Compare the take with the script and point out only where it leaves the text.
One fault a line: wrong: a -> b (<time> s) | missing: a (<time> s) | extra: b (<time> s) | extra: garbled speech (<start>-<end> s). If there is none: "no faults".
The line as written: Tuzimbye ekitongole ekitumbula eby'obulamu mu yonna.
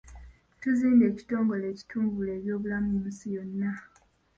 extra: nsi (3.1 s)